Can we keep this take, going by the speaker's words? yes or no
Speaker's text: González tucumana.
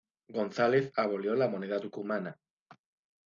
no